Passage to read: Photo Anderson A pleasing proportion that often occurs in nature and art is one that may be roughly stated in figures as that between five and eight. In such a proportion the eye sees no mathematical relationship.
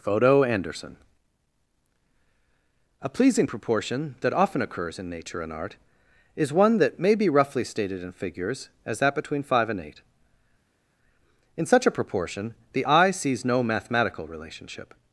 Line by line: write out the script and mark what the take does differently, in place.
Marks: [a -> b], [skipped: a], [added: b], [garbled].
Photo Anderson A pleasing proportion that often occurs in nature and art is one that may be roughly stated in figures as that between five and eight. In such a proportion the eye sees no mathematical relationship.